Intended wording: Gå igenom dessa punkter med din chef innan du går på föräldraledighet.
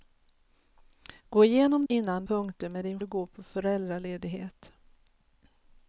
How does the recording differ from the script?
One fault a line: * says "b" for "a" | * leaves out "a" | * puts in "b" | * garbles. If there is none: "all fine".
* says "innan" for "dessa"
* leaves out "chef innan"